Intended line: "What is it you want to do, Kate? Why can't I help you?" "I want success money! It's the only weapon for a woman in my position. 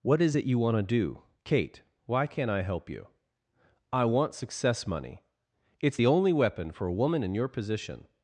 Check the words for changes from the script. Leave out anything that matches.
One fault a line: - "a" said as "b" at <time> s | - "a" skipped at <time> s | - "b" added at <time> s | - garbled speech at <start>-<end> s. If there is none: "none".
- "my" said as "your" at 7.3 s